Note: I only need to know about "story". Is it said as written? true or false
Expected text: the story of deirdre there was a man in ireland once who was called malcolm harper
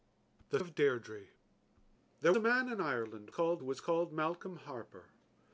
false